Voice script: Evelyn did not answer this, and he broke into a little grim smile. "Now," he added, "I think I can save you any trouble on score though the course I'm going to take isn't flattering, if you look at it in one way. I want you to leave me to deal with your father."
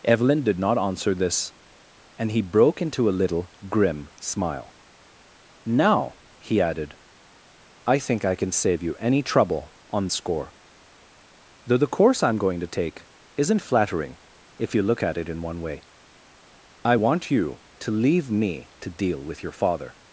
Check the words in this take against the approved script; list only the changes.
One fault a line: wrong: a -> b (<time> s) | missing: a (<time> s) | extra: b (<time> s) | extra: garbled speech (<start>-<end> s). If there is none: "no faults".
no faults